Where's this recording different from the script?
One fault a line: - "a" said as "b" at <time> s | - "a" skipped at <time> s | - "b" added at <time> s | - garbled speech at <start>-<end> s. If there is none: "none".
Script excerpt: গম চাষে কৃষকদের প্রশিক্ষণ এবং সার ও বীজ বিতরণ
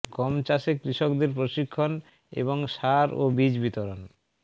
none